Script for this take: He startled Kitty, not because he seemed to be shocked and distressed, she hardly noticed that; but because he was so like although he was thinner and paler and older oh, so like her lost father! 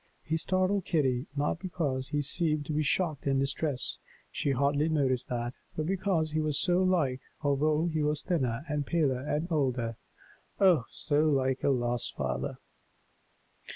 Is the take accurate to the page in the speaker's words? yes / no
yes